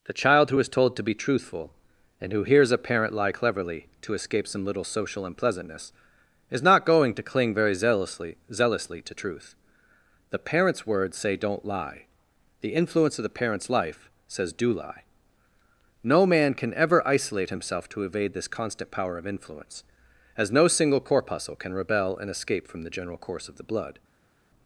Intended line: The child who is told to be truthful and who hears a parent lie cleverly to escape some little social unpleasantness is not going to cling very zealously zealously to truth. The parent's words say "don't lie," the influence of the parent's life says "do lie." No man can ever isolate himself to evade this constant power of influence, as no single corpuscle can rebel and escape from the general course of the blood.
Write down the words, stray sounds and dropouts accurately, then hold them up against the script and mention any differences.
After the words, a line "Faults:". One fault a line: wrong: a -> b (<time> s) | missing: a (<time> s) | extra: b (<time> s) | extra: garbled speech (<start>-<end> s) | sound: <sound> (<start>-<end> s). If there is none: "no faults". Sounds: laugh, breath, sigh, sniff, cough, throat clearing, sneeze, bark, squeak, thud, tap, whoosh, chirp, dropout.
The child who is told to be truthful and who hears a parent lie cleverly to escape some little social unpleasantness is not going to cling very zealously zealously to truth. The parent's words say "don't lie," the influence of the parent's life says "do lie." No man can ever isolate himself to evade this constant power of influence, as no single corpuscle can rebel and escape from the general course of the blood.
Faults:
no faults